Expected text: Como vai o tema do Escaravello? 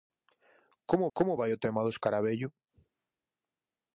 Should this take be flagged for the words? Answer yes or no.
yes